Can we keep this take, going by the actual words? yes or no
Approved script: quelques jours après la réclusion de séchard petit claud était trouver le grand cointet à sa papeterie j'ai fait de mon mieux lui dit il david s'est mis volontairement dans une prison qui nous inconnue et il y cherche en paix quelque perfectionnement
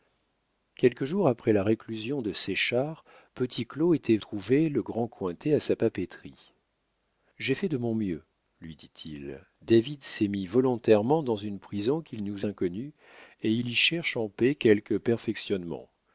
yes